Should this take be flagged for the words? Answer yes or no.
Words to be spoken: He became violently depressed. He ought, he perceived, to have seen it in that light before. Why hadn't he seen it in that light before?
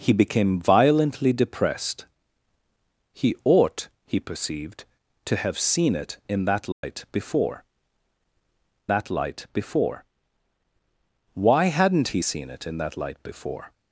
yes